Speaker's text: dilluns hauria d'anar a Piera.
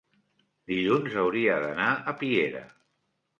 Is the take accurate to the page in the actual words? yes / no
yes